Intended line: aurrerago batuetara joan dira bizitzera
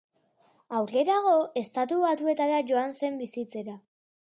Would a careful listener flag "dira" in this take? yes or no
yes